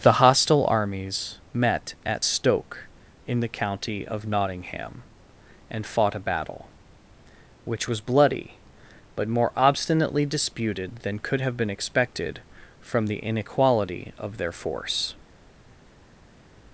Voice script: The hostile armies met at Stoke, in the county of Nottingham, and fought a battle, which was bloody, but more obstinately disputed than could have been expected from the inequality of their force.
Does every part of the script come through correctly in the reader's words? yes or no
yes